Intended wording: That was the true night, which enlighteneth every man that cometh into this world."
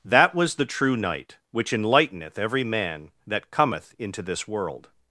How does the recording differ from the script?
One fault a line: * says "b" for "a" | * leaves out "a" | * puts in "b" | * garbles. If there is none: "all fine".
all fine